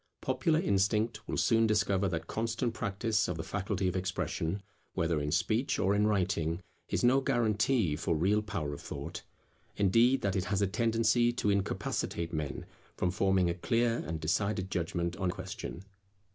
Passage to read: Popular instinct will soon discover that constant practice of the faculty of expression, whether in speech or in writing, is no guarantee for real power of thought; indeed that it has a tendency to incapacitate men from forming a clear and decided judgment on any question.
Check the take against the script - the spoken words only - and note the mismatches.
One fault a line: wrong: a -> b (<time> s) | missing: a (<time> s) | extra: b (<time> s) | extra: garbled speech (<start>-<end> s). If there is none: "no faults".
missing: any (15.3 s)